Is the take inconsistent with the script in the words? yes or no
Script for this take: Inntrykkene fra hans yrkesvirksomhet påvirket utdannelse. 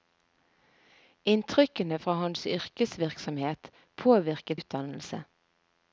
no